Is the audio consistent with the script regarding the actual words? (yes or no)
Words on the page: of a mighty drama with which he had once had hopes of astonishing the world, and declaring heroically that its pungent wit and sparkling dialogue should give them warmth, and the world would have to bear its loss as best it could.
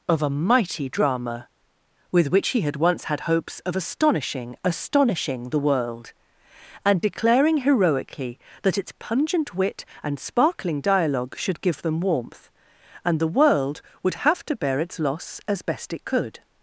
no